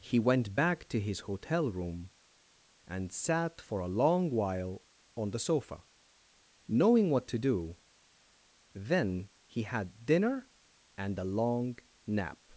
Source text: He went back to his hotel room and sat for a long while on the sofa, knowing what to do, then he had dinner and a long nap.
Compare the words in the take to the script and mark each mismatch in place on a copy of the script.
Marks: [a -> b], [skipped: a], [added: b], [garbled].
He went back to his hotel room and sat for a long while on the sofa, knowing what to do, then he had dinner and a long nap.